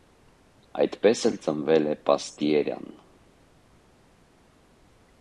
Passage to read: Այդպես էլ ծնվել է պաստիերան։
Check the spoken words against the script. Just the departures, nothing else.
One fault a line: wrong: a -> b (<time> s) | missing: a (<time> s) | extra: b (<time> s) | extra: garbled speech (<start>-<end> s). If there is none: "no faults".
no faults